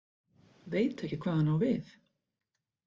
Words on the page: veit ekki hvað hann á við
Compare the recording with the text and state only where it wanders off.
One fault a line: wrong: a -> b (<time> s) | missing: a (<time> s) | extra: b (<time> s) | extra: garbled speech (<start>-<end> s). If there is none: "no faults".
no faults